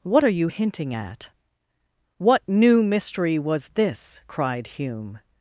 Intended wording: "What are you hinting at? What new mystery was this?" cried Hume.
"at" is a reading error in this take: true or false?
false